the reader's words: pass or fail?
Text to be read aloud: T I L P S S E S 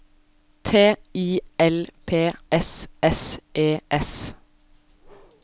pass